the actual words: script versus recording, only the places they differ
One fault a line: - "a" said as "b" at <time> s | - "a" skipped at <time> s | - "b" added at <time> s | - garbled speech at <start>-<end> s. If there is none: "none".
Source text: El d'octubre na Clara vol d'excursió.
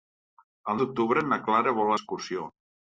none